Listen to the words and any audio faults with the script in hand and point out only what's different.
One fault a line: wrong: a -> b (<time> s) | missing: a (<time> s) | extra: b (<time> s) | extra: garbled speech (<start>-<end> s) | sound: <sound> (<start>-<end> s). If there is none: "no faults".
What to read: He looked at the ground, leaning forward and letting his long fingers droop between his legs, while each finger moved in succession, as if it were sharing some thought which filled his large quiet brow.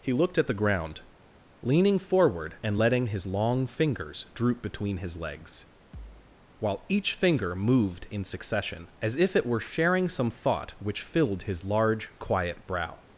sound: thud (5.9-6.4 s)